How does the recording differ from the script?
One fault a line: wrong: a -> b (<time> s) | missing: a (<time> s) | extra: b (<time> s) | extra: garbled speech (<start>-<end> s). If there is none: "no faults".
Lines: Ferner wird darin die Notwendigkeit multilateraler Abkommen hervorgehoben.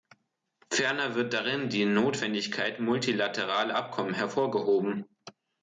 no faults